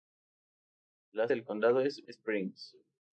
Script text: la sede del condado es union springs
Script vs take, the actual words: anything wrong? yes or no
yes